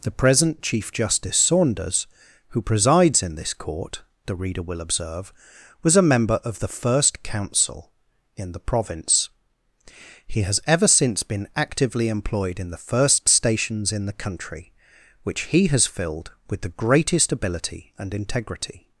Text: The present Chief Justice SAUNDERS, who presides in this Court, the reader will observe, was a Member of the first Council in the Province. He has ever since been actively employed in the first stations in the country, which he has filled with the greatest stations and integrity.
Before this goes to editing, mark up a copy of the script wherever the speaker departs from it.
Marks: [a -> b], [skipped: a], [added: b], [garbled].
The present Chief Justice SAUNDERS, who presides in this Court, the reader will observe, was a Member of the first Council in the Province. He has ever since been actively employed in the first stations in the country, which he has filled with the greatest [stations -> ability] and integrity.